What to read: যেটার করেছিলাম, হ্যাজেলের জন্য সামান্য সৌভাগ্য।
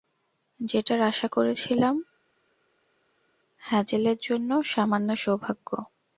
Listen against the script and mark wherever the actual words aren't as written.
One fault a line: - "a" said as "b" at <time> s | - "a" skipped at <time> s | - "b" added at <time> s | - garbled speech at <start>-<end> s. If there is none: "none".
- "আশা" added at 1.0 s